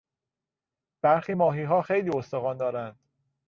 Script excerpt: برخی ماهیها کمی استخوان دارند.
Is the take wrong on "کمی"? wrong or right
wrong